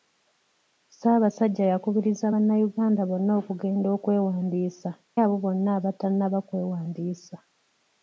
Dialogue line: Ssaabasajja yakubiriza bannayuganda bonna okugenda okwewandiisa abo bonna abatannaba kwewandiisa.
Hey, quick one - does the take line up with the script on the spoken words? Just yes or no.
yes